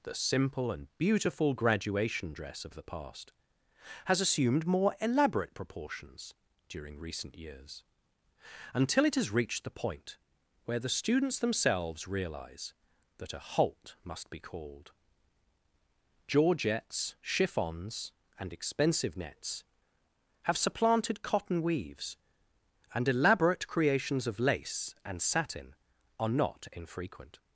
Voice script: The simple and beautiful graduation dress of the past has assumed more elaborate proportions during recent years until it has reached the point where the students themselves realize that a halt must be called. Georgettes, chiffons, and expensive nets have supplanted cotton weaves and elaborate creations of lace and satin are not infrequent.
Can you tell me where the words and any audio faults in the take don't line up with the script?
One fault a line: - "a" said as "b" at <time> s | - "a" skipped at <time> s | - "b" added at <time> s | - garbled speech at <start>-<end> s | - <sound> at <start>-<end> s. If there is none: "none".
none